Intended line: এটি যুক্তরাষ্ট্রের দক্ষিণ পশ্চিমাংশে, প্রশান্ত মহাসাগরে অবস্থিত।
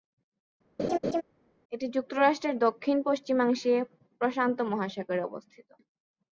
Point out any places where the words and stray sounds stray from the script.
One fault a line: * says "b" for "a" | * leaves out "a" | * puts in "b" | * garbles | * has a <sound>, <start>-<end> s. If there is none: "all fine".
* has a laugh, 0.8-1.2 s